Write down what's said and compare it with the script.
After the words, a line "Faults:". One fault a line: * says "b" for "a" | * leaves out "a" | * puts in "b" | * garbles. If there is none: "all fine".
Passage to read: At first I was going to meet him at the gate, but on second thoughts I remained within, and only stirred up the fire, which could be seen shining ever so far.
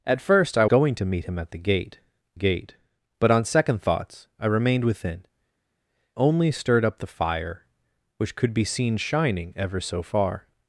At first I going to meet him at the gate gate, but on second thoughts I remained within, only stirred up the fire, which could be seen shining ever so far.
Faults:
* leaves out "was"
* puts in "gate"
* leaves out "and"